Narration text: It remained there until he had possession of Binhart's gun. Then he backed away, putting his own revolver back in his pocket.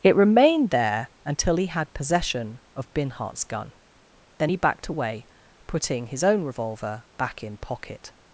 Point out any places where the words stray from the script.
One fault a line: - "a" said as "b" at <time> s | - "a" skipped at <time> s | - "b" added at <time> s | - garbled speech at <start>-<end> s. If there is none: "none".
- "his" skipped at 7.6 s